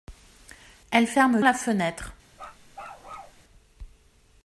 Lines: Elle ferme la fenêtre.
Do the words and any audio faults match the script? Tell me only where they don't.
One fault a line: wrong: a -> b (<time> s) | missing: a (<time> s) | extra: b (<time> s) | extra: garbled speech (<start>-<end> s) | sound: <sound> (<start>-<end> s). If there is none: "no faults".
sound: bark (2.3-3.4 s)